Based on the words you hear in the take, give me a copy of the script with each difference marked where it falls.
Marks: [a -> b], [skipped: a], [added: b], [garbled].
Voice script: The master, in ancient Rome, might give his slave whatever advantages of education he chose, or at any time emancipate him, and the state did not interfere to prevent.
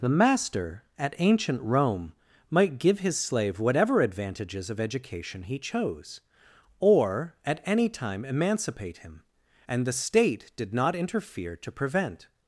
The master, [in -> at] ancient Rome, might give his slave whatever advantages of education he chose, or at any time emancipate him, and the state did not interfere to prevent.